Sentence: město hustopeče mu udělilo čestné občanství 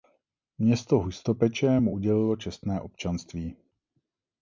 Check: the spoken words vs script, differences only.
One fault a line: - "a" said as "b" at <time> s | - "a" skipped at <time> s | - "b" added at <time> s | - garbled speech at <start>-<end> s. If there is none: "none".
none